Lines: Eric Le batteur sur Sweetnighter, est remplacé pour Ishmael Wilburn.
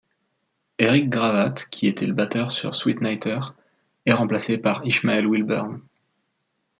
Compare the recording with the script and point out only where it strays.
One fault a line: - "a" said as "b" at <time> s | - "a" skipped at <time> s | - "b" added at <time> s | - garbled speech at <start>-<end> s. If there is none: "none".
- "Gravatt qui était" added at 1.1 s
- "pour" said as "par" at 4.6 s